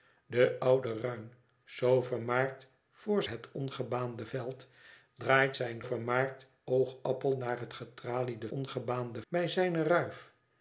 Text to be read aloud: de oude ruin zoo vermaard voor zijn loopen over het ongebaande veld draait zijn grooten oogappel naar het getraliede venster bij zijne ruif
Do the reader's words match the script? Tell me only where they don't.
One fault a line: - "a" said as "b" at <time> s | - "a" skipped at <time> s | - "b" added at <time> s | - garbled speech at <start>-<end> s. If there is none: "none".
- "zijn loopen over" skipped at 3.2 s
- "grooten" said as "vermaard" at 5.8 s
- "venster" said as "ongebaande" at 8.5 s